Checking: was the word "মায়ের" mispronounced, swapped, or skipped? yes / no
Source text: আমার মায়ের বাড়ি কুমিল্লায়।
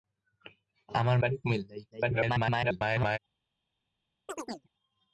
yes